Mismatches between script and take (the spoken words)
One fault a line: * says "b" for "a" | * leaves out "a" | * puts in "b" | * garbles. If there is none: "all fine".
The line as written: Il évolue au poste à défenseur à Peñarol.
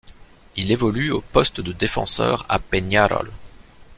* says "de" for "à"